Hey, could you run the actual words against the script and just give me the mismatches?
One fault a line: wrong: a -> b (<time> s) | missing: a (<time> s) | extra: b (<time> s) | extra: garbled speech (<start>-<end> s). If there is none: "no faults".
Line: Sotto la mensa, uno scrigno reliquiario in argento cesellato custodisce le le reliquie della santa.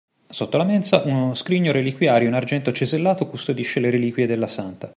missing: le (3.9 s)